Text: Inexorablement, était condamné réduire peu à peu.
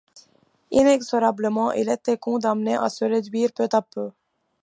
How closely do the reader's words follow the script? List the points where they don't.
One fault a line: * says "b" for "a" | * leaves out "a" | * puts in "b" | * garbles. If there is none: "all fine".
* puts in "il"
* puts in "à se"